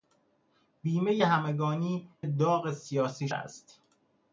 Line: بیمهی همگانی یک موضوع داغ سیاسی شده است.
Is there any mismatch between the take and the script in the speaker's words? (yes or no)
yes